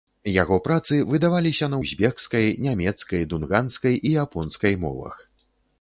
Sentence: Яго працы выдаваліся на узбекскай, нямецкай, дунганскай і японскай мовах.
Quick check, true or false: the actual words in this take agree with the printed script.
true